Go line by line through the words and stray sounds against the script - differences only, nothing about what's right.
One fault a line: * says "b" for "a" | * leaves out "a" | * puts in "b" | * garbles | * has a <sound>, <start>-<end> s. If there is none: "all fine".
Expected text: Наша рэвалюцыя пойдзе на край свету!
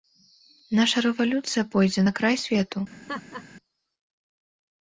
* has a laugh, 2.9-3.4 s